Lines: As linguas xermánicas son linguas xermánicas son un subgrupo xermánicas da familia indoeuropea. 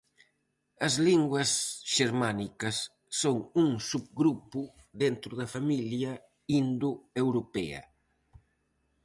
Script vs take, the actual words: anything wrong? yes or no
yes